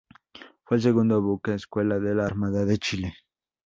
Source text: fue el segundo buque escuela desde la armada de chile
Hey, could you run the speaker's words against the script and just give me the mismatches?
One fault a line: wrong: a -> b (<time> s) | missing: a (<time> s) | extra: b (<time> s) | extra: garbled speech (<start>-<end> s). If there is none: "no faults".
wrong: desde -> de (2.0 s)